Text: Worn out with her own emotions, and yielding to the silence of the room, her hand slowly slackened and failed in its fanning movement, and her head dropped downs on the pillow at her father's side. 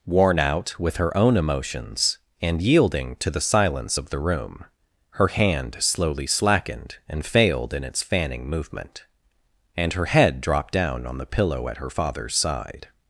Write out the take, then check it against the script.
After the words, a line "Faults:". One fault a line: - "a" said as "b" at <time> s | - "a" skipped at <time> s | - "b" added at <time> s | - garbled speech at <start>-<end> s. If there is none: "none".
Worn out with her own emotions, and yielding to the silence of the room, her hand slowly slackened and failed in its fanning movement, and her head dropped down on the pillow at her father's side.
Faults:
- "downs" said as "down" at 10.7 s